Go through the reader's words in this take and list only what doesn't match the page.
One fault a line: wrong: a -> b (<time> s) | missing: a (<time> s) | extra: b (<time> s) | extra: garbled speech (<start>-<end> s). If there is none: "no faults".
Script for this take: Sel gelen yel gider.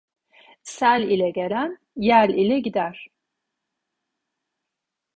extra: ile (1.0 s)
extra: ile (2.3 s)